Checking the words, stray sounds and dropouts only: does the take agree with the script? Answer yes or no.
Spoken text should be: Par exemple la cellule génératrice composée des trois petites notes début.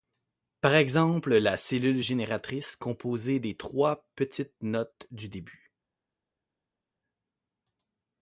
no